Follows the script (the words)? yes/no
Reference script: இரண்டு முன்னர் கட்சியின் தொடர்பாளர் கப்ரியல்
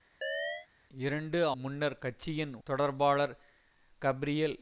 yes